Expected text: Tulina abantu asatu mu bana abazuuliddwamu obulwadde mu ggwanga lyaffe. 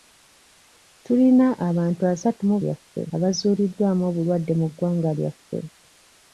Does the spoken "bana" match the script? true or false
false